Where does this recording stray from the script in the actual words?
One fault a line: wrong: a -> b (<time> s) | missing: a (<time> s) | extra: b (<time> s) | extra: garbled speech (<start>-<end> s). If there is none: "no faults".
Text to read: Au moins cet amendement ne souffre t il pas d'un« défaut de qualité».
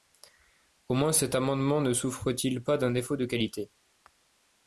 no faults